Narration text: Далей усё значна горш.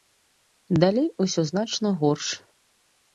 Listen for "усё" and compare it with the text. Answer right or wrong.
right